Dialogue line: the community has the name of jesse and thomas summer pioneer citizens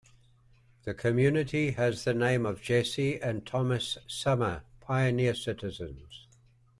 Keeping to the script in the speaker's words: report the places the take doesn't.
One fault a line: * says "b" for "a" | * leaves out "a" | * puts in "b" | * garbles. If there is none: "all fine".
all fine